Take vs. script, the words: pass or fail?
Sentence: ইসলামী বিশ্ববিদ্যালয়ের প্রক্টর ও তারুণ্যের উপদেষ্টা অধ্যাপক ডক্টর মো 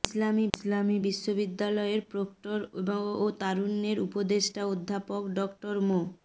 fail